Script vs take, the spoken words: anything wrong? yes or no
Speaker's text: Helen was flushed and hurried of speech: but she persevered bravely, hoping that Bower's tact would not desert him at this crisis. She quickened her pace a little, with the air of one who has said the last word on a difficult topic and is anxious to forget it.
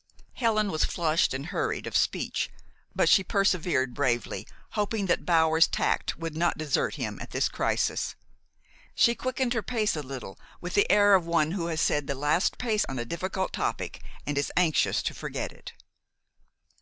yes